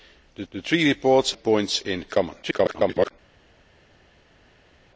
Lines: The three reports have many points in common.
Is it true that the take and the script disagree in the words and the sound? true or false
true